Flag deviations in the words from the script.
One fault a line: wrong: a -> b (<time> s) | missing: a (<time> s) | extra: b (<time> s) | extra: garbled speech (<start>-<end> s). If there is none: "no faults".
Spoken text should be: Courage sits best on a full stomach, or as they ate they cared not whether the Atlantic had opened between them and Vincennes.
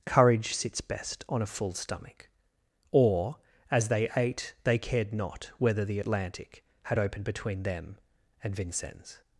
no faults